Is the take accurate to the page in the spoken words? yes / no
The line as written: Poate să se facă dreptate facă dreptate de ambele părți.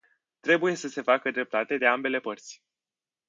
no